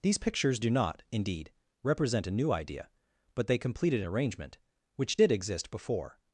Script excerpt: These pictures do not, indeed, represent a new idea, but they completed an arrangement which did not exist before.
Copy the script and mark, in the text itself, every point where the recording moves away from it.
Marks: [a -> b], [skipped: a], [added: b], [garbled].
These pictures do not, indeed, represent a new idea, but they completed an arrangement which did [skipped: not] exist before.